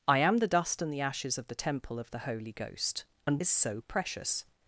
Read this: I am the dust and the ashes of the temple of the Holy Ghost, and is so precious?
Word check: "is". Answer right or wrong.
right